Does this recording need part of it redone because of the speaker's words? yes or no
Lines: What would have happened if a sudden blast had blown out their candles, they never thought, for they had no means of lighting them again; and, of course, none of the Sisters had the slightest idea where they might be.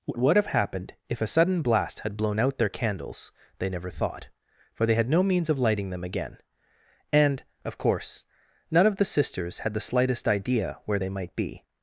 no